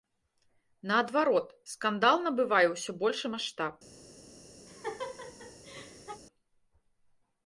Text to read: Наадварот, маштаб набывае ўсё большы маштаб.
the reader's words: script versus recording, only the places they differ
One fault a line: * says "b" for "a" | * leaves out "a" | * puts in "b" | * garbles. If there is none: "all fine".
* says "скандал" for "маштаб"